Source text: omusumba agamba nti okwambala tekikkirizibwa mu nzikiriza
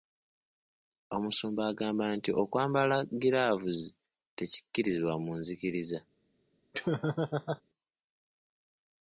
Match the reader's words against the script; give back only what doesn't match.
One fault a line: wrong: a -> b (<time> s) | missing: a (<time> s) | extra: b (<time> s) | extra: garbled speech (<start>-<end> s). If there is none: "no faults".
extra: giraavuzi (3.2 s)